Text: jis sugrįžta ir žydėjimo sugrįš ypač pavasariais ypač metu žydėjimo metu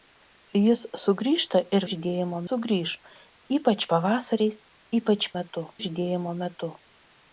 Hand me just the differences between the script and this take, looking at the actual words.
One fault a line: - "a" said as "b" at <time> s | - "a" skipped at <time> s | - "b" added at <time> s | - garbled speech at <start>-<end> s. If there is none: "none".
none